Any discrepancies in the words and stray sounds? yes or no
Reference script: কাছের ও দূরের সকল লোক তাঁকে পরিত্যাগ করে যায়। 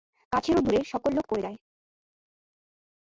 yes